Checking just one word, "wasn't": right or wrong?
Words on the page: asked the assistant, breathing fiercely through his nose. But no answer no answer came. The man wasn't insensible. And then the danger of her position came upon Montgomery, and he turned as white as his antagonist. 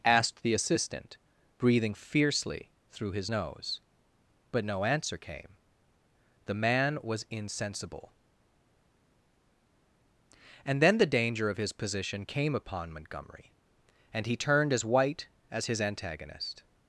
wrong